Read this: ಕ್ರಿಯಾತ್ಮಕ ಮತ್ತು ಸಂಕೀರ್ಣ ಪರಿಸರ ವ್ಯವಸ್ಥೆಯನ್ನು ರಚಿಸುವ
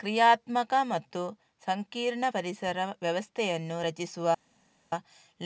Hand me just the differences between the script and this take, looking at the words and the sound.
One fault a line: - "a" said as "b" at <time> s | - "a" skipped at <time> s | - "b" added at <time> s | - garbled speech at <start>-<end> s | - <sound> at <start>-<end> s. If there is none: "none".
none